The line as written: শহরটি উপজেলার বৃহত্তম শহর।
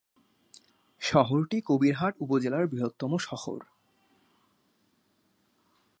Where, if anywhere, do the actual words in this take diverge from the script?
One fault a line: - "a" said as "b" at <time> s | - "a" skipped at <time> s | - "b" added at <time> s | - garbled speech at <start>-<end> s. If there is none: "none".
- "কবিরহাট" added at 1.6 s